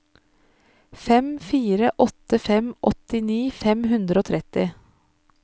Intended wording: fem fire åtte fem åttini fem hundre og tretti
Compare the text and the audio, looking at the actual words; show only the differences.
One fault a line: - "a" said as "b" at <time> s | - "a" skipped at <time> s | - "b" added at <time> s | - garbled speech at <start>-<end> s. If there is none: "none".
none